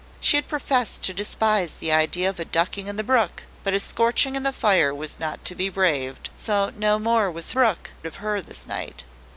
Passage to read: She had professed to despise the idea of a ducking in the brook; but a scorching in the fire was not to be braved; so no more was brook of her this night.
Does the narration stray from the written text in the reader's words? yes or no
no